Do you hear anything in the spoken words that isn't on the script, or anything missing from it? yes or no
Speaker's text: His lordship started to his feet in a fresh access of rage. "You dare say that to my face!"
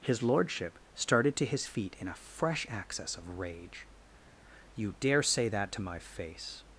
no